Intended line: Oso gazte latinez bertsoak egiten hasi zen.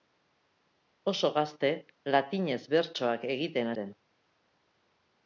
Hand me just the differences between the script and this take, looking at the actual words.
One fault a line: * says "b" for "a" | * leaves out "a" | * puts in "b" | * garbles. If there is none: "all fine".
* leaves out "hasi"